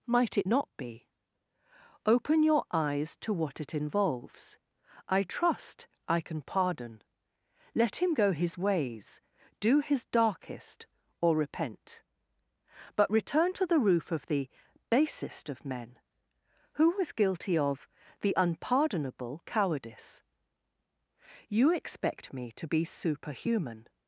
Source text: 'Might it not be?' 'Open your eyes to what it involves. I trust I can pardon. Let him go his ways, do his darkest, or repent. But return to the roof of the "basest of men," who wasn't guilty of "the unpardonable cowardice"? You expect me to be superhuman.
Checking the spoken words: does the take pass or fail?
fail